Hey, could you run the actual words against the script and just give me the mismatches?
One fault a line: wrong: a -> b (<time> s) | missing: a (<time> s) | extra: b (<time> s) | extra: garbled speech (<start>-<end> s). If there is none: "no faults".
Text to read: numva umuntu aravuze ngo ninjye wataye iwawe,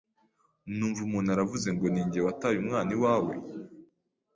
extra: umwana (2.6 s)